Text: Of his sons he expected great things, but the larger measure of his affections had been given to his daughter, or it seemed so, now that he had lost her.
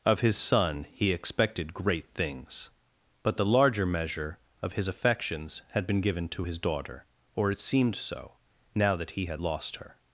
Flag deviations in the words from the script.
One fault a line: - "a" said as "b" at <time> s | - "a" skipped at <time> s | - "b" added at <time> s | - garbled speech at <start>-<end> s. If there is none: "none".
- "sons" said as "son" at 0.3 s